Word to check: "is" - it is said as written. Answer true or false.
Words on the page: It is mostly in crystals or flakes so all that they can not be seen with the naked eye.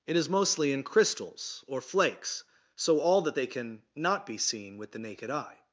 true